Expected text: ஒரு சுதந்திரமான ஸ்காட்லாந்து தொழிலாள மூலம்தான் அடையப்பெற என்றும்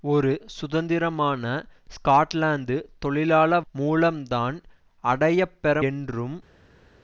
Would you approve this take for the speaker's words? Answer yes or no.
yes